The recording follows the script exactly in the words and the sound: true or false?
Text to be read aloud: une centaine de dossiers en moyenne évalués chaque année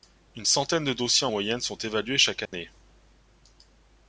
false